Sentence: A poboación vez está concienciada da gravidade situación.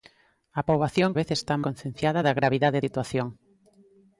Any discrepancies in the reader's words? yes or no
no